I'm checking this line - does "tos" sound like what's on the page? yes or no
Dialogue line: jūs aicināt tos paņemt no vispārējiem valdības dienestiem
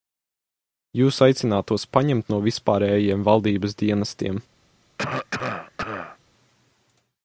yes